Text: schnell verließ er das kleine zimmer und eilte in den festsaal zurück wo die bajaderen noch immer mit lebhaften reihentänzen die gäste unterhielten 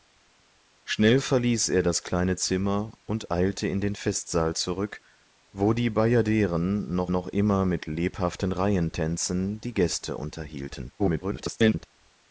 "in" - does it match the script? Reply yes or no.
yes